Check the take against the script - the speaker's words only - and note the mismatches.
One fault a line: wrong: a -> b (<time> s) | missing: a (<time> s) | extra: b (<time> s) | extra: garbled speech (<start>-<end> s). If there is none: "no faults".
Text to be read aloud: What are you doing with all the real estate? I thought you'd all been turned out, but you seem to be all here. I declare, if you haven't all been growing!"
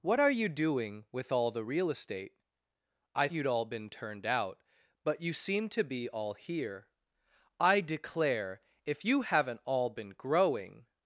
missing: thought (3.3 s)